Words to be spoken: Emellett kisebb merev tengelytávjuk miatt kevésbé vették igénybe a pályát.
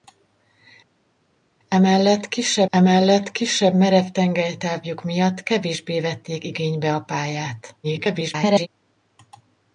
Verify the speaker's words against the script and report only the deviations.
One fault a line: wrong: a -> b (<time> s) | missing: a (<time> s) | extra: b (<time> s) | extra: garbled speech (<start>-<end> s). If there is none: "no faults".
extra: emellett kisebb (2.7 s)
extra: garbled speech (7.8-8.7 s)